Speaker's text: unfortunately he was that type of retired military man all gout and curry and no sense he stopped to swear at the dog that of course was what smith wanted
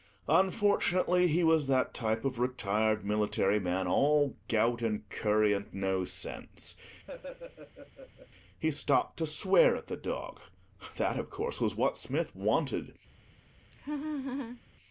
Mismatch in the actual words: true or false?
false